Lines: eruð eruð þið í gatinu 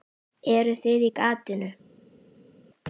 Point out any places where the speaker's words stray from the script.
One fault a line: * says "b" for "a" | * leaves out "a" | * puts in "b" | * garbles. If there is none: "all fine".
* leaves out "eruð"